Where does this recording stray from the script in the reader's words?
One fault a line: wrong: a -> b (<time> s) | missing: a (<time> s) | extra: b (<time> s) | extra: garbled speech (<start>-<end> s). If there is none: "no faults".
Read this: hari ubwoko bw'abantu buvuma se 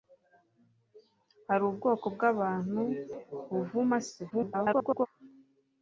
extra: garbled speech (4.3-5.1 s)